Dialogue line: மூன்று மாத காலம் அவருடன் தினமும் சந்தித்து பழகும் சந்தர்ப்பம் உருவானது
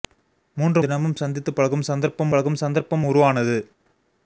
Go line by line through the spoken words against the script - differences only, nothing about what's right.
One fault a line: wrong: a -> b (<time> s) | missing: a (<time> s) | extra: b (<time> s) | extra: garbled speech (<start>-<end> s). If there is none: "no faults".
wrong: மாத காலம் அவருடன் தினமும் சந்தித்து -> தினமும் சந்தித்து பழகும் சந்தர்ப்பம் (0.8 s)